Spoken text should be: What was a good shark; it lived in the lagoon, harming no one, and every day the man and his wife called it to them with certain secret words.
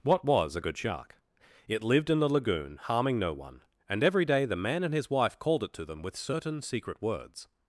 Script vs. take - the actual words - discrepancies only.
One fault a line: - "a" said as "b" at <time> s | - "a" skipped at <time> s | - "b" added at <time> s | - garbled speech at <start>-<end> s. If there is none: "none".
none